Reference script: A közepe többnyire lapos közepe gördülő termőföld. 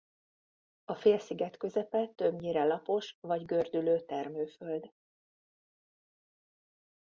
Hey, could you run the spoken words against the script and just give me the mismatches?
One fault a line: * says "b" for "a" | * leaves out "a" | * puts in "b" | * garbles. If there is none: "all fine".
* puts in "félsziget"
* says "vagy" for "közepe"